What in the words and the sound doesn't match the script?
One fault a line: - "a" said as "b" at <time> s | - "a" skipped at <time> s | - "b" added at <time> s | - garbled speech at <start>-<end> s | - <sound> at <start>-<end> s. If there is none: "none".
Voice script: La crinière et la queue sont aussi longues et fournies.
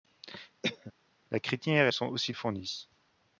- cough at 0.6-0.9 s
- "la queue" skipped at 1.9 s
- "longues" skipped at 2.3 s